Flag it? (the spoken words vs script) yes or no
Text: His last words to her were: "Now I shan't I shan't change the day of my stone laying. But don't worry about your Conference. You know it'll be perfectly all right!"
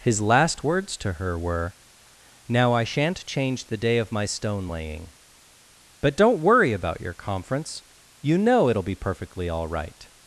yes